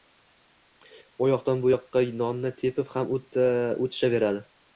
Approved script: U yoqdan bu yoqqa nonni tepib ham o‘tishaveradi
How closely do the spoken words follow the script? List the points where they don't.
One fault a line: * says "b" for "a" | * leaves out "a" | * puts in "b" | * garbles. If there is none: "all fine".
all fine